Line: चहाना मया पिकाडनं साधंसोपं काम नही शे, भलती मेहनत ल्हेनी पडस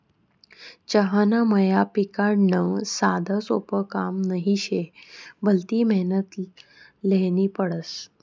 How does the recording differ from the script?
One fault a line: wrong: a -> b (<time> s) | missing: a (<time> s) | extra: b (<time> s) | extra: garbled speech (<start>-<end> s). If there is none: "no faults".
no faults